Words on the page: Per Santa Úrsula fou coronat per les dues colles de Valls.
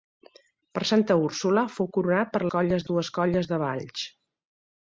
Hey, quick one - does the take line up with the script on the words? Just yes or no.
no